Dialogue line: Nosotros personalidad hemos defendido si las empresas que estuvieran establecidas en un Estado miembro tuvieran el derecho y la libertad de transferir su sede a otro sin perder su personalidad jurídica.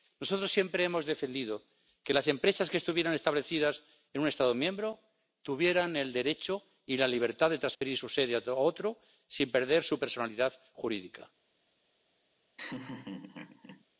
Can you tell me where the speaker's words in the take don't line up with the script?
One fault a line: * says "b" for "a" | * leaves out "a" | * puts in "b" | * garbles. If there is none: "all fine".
* says "siempre" for "personalidad"
* says "que" for "si"